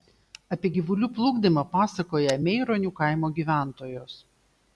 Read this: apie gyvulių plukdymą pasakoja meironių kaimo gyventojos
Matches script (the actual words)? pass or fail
pass